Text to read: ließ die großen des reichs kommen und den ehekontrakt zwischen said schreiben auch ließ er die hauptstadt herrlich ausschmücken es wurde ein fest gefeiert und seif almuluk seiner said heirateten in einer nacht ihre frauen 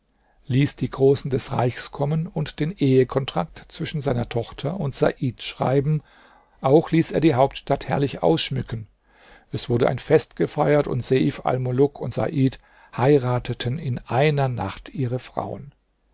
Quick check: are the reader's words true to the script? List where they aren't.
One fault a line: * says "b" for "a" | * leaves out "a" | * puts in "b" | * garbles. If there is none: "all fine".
* puts in "seiner tochter und"
* says "und" for "seiner"